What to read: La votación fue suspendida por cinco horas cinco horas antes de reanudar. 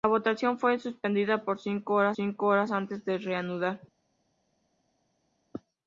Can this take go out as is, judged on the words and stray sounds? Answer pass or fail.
pass